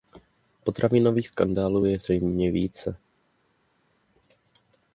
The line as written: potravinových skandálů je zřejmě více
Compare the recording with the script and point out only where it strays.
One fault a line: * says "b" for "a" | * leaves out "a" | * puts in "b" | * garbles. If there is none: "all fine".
all fine